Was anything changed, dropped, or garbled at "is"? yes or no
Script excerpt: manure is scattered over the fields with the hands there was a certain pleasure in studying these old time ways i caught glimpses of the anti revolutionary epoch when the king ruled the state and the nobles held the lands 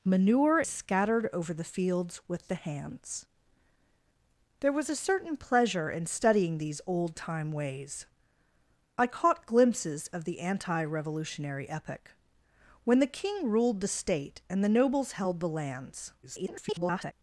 yes